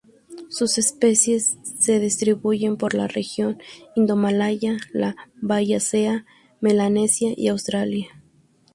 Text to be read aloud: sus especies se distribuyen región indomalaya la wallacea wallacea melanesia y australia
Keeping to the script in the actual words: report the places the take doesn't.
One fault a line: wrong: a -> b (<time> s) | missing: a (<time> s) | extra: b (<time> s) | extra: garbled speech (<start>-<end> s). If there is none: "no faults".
extra: por la (2.8 s)
missing: wallacea (6.2 s)